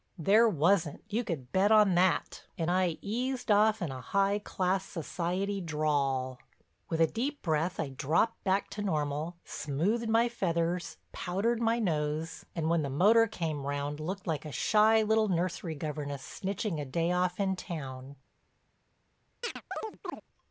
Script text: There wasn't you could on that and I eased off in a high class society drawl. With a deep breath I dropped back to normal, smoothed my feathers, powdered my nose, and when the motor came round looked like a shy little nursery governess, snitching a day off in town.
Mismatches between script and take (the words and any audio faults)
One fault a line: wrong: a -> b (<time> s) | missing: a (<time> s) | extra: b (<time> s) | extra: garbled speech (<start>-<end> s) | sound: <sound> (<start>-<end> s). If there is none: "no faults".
extra: bet (1.5 s)
sound: chirp (19.4-20.2 s)